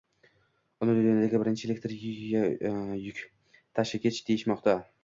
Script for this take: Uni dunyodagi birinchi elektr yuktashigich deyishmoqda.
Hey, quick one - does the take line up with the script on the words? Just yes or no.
yes